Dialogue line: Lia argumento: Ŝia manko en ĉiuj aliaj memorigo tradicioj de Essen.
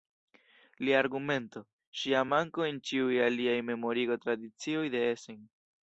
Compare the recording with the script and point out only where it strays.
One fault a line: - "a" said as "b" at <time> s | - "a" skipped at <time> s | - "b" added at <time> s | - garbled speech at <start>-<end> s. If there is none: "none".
none